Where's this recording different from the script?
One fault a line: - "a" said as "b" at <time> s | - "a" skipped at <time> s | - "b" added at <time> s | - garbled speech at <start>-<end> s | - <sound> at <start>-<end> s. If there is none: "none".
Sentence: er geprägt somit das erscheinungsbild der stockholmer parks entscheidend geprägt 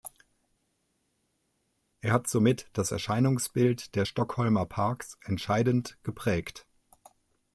- "geprägt" said as "hat" at 2.1 s